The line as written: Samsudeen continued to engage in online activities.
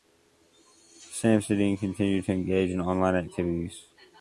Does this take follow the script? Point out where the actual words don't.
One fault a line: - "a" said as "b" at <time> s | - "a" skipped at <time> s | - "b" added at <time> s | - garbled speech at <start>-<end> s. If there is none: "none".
none